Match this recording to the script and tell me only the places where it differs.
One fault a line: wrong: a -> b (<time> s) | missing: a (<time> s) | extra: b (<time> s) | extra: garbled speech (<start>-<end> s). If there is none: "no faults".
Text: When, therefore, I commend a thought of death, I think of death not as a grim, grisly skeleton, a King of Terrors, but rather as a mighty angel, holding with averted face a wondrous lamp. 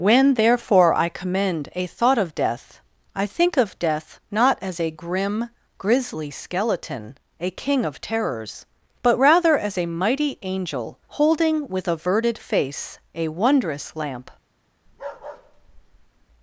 no faults